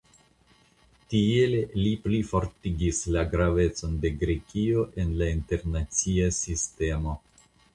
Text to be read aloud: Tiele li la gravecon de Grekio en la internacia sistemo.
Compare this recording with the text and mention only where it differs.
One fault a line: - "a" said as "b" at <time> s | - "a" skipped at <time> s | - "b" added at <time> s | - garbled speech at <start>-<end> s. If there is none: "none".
- "plifortigis" added at 2.0 s